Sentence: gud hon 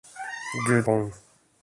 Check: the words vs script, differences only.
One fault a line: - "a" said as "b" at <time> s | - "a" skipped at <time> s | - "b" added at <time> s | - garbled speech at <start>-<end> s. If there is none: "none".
none